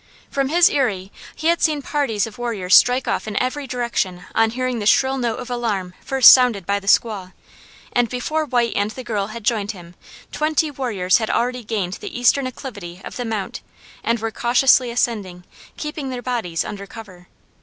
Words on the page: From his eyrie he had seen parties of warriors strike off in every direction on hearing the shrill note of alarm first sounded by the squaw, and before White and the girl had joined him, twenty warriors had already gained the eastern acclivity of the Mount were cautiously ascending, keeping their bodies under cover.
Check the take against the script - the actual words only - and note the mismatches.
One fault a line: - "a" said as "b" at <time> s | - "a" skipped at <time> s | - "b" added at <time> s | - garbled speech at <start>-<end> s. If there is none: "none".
- "and" added at 14.0 s